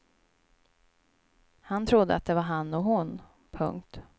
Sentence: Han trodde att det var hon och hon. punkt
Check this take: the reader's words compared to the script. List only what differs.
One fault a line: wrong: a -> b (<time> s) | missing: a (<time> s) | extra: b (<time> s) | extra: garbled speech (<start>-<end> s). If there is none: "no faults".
wrong: hon -> han (2.4 s)